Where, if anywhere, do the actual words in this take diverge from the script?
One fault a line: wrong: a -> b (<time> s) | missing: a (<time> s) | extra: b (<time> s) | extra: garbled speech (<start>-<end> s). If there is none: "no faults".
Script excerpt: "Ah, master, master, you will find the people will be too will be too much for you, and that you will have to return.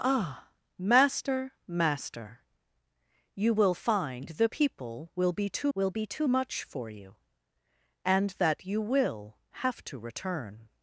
no faults